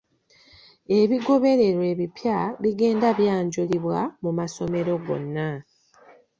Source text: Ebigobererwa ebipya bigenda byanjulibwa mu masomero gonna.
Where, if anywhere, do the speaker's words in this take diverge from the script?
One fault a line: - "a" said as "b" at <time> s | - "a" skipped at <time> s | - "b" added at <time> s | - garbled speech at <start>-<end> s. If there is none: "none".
none